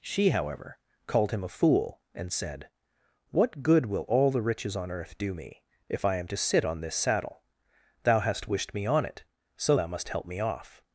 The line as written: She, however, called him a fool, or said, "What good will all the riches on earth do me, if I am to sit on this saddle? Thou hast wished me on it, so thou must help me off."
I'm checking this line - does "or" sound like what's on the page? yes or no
no